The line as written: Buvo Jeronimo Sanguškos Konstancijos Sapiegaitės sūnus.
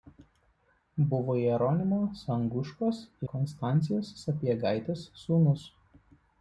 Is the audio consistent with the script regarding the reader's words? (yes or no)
yes